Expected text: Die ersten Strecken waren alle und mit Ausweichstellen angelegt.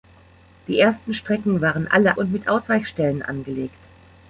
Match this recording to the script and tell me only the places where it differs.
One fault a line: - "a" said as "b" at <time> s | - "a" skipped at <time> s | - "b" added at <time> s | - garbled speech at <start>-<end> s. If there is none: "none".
none